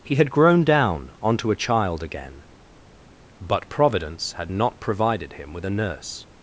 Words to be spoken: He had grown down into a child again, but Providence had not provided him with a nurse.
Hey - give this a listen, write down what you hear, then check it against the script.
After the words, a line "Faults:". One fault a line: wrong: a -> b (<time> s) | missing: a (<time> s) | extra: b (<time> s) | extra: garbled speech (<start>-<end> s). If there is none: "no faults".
He had grown down onto a child again, but Providence had not provided him with a nurse.
Faults:
wrong: into -> onto (1.2 s)